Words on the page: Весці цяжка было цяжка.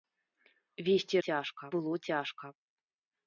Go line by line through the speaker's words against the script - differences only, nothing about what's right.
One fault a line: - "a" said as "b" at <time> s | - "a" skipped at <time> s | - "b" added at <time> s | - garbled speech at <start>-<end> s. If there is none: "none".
none